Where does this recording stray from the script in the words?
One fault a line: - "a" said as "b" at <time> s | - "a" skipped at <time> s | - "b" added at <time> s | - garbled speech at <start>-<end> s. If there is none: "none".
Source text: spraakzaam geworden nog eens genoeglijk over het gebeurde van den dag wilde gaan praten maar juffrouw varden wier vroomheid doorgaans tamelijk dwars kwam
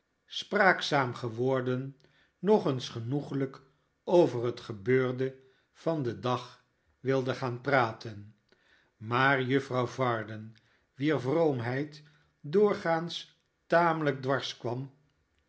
none